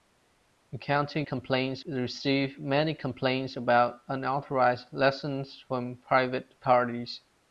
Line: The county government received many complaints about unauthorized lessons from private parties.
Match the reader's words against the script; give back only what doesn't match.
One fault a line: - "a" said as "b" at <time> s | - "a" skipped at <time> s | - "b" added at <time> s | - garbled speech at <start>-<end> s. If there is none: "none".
- "government" said as "complaints" at 1.2 s